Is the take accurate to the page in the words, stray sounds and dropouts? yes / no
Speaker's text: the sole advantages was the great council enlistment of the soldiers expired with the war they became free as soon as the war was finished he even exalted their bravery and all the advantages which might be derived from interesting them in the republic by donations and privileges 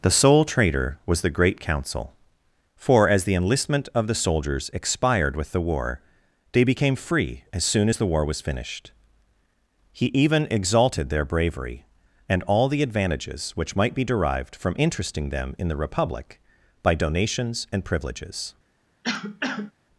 no